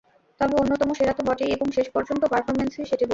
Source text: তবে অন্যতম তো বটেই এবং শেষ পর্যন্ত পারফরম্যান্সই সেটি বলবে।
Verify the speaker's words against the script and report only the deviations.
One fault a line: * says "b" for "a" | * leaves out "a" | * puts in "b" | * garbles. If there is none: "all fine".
* puts in "সেরা"